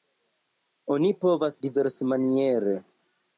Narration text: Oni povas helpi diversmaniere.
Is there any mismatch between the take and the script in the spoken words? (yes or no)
yes